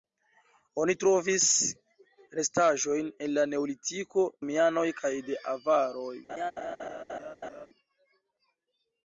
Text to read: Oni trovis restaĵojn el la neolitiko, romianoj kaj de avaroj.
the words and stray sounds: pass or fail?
fail